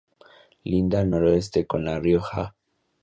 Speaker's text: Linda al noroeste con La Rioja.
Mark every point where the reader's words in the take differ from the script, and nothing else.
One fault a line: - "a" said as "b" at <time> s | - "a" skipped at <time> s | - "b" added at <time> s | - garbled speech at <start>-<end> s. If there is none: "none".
none